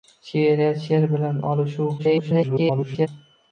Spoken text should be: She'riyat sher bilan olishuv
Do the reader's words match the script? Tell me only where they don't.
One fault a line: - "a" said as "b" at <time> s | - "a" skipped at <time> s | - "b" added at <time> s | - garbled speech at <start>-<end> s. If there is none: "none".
- garbled speech at 2.0-3.1 s